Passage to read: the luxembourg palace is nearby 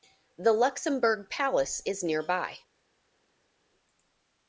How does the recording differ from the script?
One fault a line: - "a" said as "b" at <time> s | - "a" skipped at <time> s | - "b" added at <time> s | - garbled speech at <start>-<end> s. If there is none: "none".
none